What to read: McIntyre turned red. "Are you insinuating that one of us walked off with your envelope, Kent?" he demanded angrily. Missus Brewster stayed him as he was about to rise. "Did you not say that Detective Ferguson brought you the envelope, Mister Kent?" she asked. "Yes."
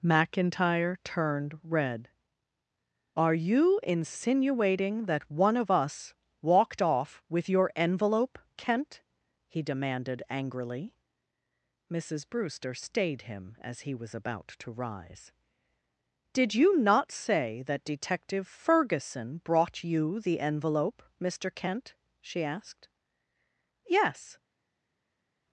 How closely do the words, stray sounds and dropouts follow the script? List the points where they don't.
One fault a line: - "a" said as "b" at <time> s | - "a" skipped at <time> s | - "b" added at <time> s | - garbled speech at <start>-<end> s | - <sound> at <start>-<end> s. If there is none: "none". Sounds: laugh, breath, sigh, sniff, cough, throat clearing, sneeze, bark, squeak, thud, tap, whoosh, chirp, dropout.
none